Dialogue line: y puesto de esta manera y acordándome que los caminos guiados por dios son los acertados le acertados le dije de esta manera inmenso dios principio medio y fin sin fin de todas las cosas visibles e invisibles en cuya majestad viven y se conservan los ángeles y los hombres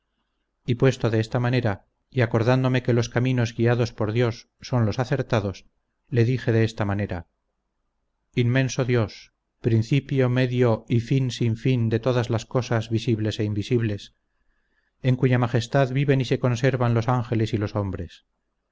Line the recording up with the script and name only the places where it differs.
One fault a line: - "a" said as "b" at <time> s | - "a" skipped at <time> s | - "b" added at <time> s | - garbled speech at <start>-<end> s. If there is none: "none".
- "acertados le" skipped at 6.2 s